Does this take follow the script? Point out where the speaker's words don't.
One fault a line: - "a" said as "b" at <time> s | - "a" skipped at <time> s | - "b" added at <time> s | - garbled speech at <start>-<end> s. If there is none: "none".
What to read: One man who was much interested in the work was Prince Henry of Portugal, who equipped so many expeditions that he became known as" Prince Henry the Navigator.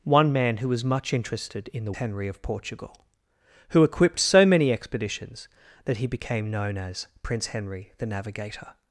- "work was Prince" skipped at 1.9 s